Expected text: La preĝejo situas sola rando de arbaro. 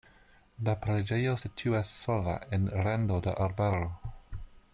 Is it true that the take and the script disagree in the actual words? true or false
true